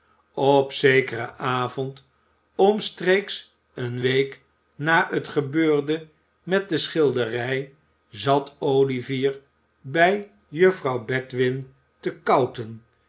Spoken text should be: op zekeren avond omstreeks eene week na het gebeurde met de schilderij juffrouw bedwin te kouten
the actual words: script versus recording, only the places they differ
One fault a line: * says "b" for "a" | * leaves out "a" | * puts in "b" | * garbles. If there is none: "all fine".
* puts in "zat olivier bij"